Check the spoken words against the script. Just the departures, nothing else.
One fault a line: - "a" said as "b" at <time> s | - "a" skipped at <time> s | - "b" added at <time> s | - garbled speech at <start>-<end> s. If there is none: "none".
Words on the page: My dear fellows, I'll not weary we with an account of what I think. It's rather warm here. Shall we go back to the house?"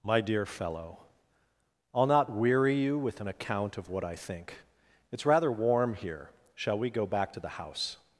- "fellows" said as "fellow" at 0.5 s
- "we" said as "you" at 2.8 s